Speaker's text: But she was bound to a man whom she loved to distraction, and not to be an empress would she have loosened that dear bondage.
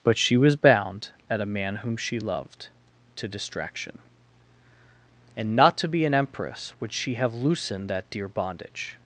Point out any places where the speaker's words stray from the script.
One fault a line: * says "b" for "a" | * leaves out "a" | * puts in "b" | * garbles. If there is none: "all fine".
* says "at" for "to"